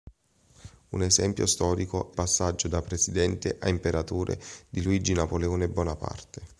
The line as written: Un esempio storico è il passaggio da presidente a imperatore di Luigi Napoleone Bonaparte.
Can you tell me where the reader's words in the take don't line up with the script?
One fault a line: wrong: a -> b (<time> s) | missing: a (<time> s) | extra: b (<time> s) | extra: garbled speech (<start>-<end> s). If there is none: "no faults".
missing: il (2.2 s)